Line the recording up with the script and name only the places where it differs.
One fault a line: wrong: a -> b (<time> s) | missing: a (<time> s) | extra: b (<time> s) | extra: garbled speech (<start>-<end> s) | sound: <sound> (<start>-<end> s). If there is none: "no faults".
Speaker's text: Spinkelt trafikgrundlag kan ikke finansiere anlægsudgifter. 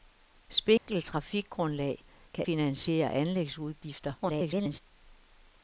sound: dropout (0.8-0.9 s)
missing: ikke (2.5 s)
extra: garbled speech (4.2-4.8 s)